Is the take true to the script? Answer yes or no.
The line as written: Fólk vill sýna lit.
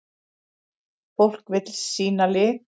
yes